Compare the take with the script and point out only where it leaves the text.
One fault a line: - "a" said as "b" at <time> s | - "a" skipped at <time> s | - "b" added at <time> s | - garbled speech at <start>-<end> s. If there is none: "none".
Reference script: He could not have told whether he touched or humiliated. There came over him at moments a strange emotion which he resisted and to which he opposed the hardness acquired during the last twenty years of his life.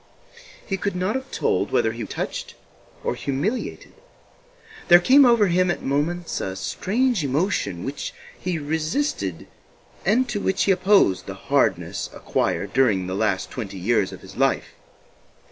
none